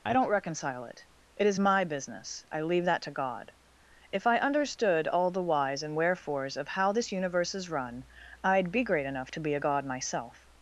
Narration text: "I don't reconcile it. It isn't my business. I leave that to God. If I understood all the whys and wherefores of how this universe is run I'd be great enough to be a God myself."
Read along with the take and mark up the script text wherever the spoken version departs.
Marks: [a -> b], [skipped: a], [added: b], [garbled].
"I don't reconcile it. It [isn't -> is] my business. I leave that to God. If I understood all the whys and wherefores of how this universe is run I'd be great enough to be a God myself."